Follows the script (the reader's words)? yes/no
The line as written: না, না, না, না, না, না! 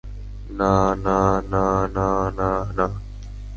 yes